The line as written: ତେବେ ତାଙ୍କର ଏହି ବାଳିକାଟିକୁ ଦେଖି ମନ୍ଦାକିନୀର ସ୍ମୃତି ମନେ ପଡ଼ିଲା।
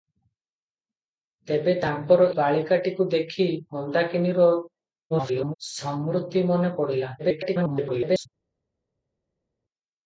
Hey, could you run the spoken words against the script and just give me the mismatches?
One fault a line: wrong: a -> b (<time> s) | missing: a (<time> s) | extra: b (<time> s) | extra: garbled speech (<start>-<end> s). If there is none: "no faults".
missing: ଏହି (2.3 s)
extra: garbled speech (5.1-5.5 s)
extra: garbled speech (7.2-8.3 s)